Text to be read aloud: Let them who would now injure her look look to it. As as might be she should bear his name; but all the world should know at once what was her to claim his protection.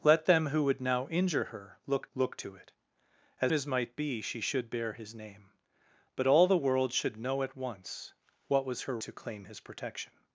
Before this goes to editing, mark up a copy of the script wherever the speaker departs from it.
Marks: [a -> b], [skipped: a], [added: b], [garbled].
Let them who would now injure her look look to it. As as might be she should bear his name; but all the world should know at once what was her to claim his protection.